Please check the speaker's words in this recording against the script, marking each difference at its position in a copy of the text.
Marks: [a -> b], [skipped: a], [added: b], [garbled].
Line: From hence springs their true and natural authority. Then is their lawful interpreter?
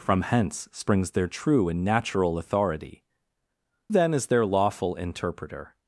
From hence springs their true and natural authority. Then is their lawful interpreter?